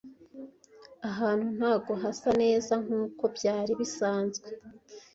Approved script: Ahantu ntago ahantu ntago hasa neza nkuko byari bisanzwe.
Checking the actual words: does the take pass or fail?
fail